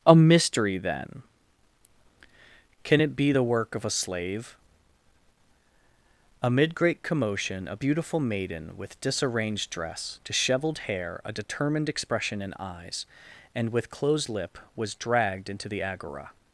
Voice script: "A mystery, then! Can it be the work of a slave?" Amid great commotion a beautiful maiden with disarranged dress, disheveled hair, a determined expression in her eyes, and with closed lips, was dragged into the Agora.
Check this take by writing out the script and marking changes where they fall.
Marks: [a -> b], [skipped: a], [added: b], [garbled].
"A mystery, then! Can it be the work of a slave?" Amid great commotion a beautiful maiden with disarranged dress, disheveled hair, a determined expression in [skipped: her] eyes, and with closed [lips, -> lip] was dragged into the Agora.